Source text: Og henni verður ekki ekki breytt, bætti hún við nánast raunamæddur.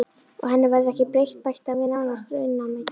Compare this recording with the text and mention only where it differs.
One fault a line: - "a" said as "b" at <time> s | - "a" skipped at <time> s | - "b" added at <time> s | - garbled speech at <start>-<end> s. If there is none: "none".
- "ekki" skipped at 1.1 s
- "hún" said as "hann" at 1.7 s